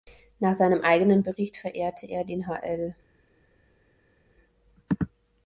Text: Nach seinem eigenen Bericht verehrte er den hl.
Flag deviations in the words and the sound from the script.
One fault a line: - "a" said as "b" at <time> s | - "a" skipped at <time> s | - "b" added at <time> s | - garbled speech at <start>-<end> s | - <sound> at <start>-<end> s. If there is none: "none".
none